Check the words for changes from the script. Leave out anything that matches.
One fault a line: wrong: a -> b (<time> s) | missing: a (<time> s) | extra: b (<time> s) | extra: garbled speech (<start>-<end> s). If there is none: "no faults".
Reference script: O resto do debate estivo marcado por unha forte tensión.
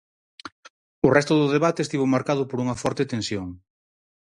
no faults